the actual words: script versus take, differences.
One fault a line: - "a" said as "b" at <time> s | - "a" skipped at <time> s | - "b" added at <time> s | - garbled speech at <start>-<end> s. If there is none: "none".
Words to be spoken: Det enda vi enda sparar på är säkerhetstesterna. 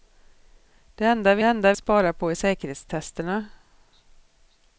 none